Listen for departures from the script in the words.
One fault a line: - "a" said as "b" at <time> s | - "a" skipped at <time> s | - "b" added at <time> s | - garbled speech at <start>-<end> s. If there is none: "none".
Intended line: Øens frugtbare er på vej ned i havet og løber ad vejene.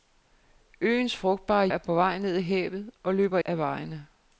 none